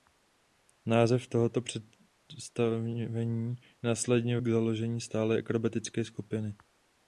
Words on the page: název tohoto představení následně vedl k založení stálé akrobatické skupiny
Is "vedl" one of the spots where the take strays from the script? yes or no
yes